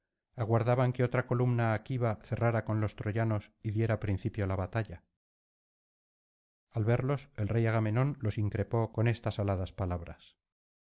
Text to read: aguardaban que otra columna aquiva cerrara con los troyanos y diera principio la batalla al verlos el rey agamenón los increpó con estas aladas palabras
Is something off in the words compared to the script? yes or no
no